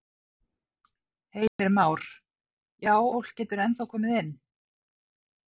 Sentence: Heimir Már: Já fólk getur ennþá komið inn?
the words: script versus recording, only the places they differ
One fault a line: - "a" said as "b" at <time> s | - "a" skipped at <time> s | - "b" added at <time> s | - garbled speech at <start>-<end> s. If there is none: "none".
none